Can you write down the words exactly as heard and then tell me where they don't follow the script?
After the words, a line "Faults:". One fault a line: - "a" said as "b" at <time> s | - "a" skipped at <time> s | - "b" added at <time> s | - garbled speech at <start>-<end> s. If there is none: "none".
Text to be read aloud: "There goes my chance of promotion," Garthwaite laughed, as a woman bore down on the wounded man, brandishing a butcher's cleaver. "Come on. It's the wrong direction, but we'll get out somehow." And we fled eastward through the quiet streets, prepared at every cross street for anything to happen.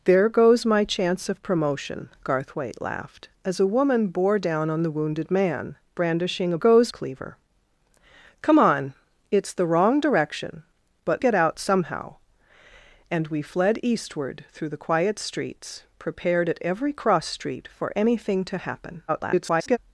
"There goes my chance of promotion," Garthwaite laughed, as a woman bore down on the wounded man, brandishing a goes cleaver. "Come on. It's the wrong direction, but get out somehow." And we fled eastward through the quiet streets, prepared at every cross street for anything to happen. [garbled]
Faults:
- "butcher's" said as "goes" at 6.6 s
- "we'll" skipped at 11.2 s
- garbled speech at 19.1-19.8 s